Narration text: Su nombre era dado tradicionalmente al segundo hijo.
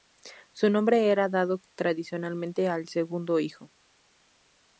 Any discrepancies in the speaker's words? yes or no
no